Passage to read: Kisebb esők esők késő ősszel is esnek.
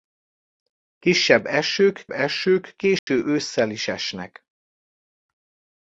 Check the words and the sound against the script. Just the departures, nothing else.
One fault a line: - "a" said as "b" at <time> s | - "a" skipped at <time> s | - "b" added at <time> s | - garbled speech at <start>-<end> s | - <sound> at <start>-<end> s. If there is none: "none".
- dropout at 3.0-3.1 s